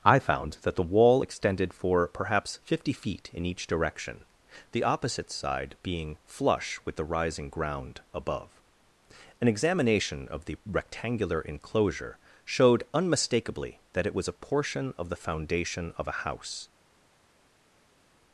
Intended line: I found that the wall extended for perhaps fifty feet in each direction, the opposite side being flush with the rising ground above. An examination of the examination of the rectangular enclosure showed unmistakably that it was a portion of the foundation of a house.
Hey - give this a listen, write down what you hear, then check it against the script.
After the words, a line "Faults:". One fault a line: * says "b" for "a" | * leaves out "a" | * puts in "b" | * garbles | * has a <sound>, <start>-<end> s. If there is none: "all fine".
I found that the wall extended for perhaps fifty feet in each direction, the opposite side being flush with the rising ground above. An examination of the rectangular enclosure showed unmistakably that it was a portion of the foundation of a house.
Faults:
* leaves out "examination of the"